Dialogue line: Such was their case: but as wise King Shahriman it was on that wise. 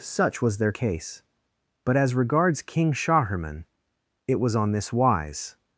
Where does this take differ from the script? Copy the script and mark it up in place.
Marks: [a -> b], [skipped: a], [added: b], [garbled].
Such was their case: but as [wise -> regards] King Shahriman it was on [that -> this] wise.